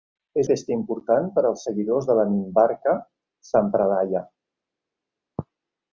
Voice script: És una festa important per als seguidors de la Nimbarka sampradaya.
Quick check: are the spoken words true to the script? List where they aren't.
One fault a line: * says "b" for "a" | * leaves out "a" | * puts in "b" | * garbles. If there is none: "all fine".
* leaves out "una"